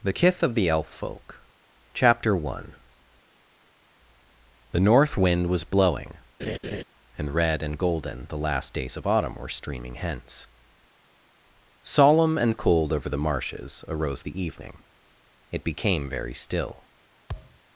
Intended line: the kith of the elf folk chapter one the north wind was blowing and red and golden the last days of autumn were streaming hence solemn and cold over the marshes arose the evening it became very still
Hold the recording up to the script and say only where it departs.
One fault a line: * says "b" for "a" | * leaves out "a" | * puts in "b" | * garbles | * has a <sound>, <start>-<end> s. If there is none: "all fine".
* has a laugh, 6.4-6.8 s
* has a thud, 17.3-17.6 s